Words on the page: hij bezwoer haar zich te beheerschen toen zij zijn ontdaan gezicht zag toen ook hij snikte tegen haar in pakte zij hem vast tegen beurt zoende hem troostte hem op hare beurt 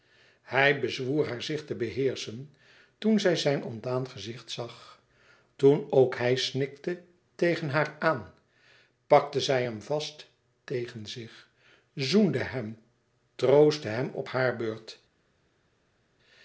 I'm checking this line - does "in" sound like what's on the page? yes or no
no